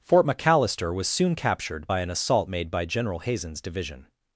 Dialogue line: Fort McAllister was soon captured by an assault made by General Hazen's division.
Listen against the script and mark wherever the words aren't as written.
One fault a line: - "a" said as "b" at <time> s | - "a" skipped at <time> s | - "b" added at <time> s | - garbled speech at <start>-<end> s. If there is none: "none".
none